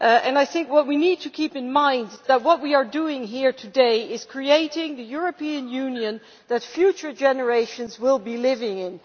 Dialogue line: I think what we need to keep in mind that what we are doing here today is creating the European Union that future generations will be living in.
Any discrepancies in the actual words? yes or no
no